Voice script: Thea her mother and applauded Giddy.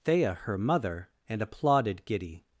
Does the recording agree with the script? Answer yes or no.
yes